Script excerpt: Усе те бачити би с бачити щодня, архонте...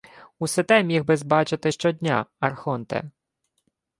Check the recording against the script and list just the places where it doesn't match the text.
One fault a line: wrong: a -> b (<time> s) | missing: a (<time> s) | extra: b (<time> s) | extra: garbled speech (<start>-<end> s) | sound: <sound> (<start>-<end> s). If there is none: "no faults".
wrong: бачити -> міг (0.8 s)